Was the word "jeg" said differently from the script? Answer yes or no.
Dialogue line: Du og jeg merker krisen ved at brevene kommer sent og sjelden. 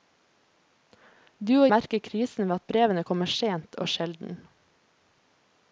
yes